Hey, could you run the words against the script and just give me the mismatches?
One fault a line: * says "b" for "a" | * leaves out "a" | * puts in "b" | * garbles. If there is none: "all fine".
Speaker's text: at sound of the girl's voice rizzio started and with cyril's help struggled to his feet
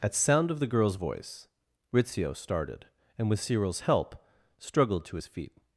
all fine